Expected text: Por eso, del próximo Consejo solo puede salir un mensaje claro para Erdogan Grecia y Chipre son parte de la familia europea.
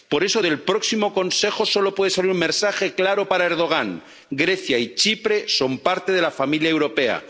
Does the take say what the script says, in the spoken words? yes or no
yes